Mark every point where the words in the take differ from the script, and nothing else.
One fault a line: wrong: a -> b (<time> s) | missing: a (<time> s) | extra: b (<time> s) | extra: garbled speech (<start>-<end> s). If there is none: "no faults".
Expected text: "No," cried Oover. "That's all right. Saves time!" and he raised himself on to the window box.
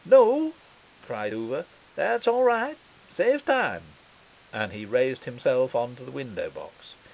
no faults